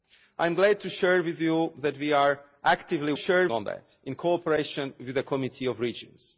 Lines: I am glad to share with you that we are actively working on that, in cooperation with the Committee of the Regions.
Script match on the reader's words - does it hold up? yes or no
no